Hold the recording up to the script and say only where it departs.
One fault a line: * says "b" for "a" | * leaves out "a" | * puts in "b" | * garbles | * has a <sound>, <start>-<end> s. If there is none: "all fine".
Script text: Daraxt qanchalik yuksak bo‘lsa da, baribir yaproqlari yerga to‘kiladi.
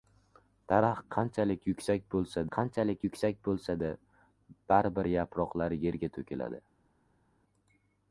* puts in "qanchalik yuksak bo‘lsa"